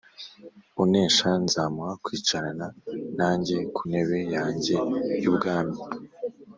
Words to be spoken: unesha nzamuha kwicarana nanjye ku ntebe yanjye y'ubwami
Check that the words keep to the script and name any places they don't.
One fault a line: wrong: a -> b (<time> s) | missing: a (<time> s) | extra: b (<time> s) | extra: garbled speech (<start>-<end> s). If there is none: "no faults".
no faults